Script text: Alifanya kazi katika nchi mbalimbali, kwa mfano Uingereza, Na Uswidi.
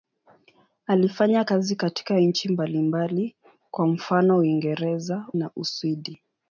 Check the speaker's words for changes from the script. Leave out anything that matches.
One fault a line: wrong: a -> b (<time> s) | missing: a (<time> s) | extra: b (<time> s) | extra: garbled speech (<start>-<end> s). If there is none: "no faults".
no faults